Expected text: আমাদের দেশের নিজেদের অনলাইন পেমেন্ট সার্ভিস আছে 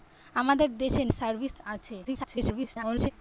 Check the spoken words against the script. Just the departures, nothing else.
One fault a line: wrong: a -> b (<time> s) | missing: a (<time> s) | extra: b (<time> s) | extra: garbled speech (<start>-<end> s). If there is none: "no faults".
missing: নিজেদের অনলাইন পেমেন্ট (1.1 s)
extra: garbled speech (2.0-3.1 s)